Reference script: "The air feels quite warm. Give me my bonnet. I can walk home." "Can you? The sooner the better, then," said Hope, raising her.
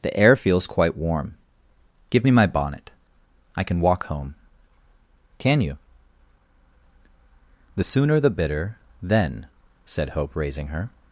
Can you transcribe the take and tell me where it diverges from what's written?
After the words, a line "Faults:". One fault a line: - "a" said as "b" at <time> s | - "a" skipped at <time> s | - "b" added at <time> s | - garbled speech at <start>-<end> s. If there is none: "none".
"The air feels quite warm. Give me my bonnet. I can walk home." "Can you? The sooner the bitter, then," said Hope, raising her.
Faults:
- "better" said as "bitter" at 8.3 s